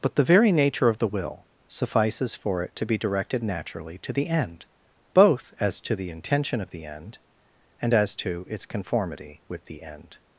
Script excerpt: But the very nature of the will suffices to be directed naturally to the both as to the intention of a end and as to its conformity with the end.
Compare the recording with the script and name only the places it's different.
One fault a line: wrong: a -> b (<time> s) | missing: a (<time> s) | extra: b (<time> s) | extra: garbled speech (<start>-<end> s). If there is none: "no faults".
extra: for it (2.3 s)
extra: end (4.3 s)
wrong: a -> the (6.7 s)